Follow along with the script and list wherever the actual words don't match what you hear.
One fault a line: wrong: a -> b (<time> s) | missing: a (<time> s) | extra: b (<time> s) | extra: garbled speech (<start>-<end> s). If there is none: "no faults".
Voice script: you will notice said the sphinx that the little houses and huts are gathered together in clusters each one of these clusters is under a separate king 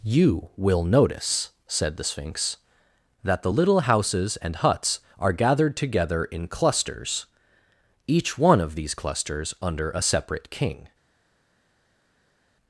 missing: is (9.6 s)